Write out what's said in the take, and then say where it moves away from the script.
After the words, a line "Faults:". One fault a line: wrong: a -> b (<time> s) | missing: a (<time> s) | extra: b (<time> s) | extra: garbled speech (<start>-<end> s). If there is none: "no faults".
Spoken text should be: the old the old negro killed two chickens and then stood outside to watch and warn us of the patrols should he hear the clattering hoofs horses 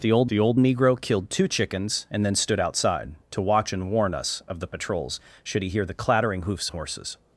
the old the old negro killed two chickens and then stood outside to watch and warn us of the patrols should he hear the clattering hoofs horses
Faults:
no faults